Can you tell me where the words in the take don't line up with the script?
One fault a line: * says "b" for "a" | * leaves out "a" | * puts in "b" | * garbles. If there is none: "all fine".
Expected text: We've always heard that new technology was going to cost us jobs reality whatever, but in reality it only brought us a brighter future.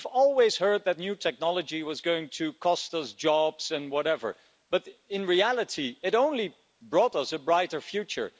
* says "and" for "reality"